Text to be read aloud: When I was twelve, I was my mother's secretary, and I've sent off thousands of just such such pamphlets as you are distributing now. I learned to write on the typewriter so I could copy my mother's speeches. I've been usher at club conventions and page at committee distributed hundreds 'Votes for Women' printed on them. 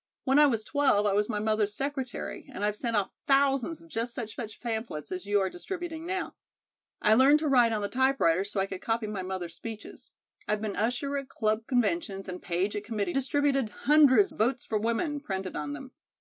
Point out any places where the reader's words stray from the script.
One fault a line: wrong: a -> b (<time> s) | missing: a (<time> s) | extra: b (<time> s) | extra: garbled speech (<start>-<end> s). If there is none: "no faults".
no faults